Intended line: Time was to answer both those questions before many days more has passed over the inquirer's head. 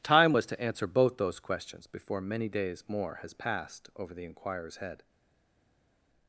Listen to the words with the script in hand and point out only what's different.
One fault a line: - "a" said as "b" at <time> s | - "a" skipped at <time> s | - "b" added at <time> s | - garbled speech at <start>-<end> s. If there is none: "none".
none